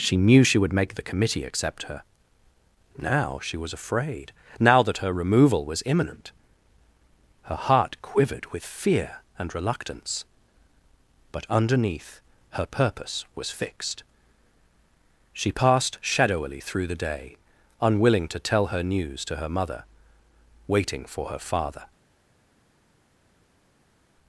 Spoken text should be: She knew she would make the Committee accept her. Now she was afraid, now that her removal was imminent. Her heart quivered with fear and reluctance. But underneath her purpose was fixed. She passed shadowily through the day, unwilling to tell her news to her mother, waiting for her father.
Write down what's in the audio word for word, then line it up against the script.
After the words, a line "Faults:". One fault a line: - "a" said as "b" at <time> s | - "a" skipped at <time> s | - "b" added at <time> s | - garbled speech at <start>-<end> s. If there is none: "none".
She knew she would make the Committee accept her. Now she was afraid, now that her removal was imminent. Her heart quivered with fear and reluctance. But underneath her purpose was fixed. She passed shadowily through the day, unwilling to tell her news to her mother, waiting for her father.
Faults:
none